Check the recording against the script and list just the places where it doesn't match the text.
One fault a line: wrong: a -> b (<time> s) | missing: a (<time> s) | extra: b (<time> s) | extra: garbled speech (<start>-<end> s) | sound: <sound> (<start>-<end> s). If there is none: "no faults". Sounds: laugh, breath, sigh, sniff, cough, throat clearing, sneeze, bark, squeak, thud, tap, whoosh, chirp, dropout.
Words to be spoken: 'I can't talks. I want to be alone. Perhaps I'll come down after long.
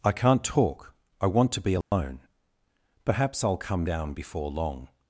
wrong: talks -> talk (0.4 s)
sound: dropout (1.8-1.9 s)
wrong: after -> before (4.1 s)